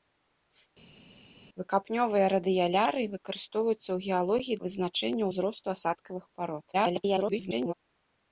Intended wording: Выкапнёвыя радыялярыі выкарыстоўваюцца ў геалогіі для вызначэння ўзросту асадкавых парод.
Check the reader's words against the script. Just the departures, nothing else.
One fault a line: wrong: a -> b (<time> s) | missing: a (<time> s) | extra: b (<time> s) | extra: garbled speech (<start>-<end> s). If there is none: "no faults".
missing: для (4.6 s)
extra: garbled speech (6.7-7.7 s)